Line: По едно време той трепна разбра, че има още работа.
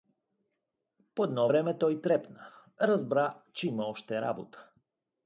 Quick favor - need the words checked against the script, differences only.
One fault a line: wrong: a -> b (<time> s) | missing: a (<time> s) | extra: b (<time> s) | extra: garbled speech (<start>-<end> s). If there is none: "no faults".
no faults